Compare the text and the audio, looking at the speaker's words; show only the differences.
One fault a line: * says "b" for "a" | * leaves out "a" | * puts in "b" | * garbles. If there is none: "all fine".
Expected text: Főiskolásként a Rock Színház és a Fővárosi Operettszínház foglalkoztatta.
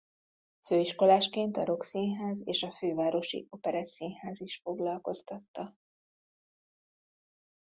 * puts in "is"